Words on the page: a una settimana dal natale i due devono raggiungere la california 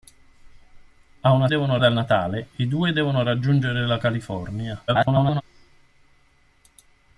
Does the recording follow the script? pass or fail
fail